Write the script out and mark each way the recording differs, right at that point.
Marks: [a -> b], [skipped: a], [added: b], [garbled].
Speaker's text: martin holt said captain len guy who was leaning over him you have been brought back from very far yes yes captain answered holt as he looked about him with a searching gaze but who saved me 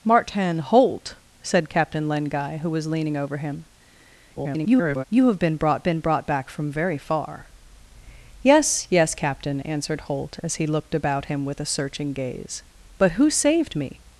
martin holt said captain len guy who was leaning over him [garbled] you have been brought [added: been brought] back from very far yes yes captain answered holt as he looked about him with a searching gaze but who saved me